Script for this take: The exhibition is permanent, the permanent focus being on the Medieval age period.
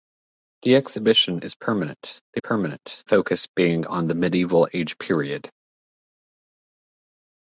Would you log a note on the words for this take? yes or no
no